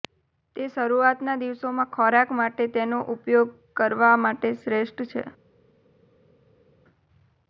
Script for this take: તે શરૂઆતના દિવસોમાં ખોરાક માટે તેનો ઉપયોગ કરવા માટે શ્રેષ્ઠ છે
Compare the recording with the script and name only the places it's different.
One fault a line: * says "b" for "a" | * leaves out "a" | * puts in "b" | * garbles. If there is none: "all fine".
all fine